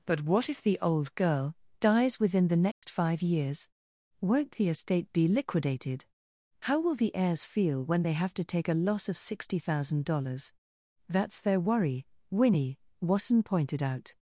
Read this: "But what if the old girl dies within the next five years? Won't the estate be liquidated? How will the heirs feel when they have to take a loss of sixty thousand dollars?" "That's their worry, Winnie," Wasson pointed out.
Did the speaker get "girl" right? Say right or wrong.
right